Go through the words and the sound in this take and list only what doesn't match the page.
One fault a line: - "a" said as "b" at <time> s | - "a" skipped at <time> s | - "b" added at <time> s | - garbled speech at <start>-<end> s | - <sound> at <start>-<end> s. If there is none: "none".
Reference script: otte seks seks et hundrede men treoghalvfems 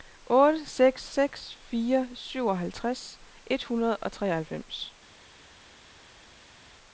- "fire syvoghalvtreds" added at 1.7 s
- "men" said as "og" at 4.0 s